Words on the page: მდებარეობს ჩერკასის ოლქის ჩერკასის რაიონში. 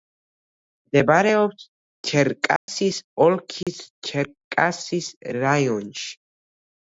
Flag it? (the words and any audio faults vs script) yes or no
yes